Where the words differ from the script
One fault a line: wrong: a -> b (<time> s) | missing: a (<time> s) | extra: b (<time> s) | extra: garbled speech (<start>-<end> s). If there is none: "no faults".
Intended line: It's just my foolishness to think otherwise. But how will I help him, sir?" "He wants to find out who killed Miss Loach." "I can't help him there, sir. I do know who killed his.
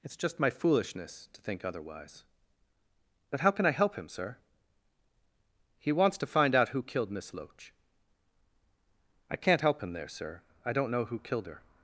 wrong: will -> can (3.5 s)
wrong: do -> don't (10.7 s)
wrong: his -> her (11.5 s)